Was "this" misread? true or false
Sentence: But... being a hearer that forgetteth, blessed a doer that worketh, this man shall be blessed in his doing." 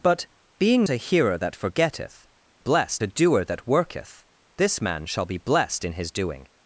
false